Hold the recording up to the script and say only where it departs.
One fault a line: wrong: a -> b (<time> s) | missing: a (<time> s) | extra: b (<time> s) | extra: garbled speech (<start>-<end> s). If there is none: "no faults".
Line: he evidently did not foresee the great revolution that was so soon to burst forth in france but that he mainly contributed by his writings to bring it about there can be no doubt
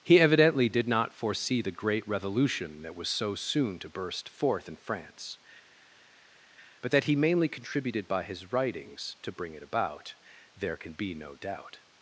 no faults